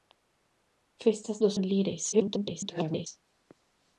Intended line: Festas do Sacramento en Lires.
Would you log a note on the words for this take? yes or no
yes